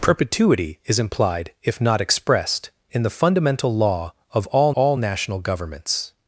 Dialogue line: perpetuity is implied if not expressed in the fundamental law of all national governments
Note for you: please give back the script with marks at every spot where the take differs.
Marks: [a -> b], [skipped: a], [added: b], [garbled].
perpetuity is implied if not expressed in the fundamental law of all [added: all] national governments